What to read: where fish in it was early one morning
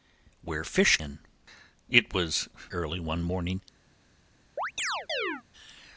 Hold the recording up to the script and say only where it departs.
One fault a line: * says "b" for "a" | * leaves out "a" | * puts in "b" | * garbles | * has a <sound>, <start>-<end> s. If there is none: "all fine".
* has a chirp, 4.6-5.4 s